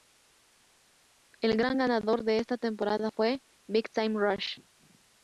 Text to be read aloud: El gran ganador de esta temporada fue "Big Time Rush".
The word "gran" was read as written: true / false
true